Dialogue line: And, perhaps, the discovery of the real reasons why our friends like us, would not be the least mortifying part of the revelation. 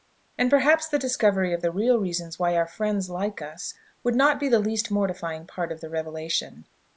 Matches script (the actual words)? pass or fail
pass